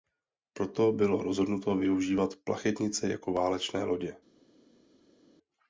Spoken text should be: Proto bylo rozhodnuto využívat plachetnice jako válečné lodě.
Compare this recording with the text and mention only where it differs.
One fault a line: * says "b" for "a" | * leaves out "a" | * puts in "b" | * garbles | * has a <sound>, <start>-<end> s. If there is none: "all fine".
all fine